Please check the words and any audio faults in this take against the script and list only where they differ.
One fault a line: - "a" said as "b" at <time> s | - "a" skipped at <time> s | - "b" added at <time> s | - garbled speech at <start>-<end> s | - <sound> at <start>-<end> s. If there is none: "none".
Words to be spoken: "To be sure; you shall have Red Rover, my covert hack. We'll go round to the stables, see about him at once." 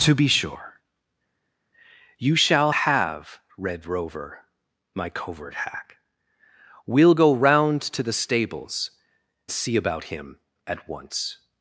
none